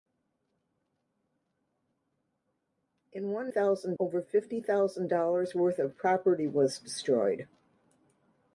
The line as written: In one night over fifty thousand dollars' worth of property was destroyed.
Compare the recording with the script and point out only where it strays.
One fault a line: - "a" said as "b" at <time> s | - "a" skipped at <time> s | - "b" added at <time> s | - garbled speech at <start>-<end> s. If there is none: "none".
- "night" said as "thousand" at 3.5 s